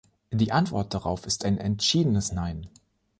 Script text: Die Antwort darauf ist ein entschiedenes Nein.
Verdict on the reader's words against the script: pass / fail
pass